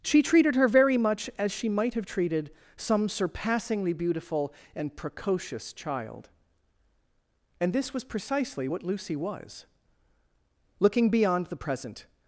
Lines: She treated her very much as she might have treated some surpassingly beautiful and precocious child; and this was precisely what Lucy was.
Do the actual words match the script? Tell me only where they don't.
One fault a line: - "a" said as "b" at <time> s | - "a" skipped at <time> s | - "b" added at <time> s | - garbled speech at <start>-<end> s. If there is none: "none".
- "Looking beyond the present" added at 10.8 s